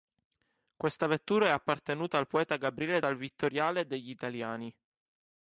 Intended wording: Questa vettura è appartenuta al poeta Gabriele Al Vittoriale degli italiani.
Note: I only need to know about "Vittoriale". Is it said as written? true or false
true